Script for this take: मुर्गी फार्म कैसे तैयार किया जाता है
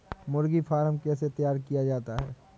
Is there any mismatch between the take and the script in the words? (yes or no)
no